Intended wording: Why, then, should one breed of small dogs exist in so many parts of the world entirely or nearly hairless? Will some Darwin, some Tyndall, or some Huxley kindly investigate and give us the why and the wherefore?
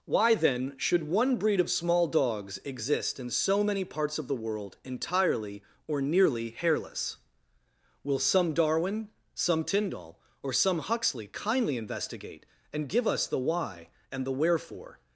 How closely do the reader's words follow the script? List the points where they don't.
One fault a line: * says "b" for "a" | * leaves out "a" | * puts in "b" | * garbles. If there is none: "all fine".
all fine